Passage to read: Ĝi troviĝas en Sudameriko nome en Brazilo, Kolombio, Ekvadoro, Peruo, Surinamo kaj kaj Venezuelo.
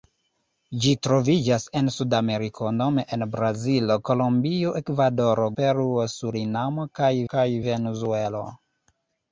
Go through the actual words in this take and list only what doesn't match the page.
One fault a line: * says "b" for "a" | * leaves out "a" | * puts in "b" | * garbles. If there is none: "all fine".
all fine